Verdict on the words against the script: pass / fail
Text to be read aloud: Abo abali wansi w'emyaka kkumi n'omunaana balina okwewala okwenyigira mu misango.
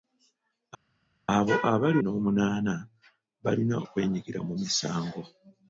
fail